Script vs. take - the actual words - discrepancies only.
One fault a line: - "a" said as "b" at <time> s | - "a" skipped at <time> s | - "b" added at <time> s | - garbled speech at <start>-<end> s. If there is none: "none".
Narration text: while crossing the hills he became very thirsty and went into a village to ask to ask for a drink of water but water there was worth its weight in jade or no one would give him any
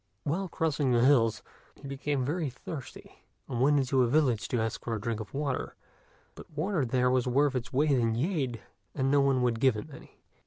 - "to ask" skipped at 4.8 s
- "or" said as "and" at 8.9 s